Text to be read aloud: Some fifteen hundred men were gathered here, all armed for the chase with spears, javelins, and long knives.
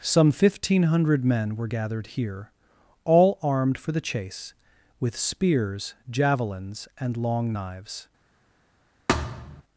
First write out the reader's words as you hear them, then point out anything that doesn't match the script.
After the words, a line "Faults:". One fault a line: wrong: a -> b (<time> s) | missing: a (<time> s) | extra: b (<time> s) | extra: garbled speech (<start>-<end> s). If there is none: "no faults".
Some fifteen hundred men were gathered here, all armed for the chase with spears, javelins, and long knives.
Faults:
no faults